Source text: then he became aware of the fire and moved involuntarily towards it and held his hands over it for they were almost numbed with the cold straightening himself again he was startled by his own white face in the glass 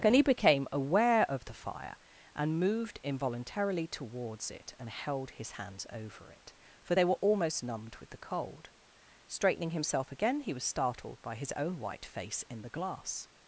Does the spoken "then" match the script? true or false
false